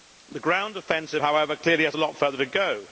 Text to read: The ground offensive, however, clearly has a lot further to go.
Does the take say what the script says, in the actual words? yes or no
yes